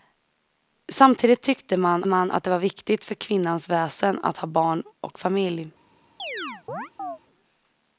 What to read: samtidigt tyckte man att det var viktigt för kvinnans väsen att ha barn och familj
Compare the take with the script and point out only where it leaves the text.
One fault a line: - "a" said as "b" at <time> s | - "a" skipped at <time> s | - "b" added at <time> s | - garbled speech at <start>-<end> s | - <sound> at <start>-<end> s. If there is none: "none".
- "man" added at 2.1 s
- chirp at 6.2-7.2 s